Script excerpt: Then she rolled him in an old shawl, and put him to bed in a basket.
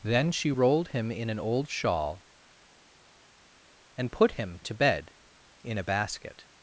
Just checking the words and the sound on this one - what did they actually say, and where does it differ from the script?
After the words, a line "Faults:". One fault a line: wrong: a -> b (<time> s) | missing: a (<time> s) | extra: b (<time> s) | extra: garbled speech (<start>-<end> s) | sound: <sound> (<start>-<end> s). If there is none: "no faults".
Then she rolled him in an old shawl, and put him to bed in a basket.
Faults:
no faults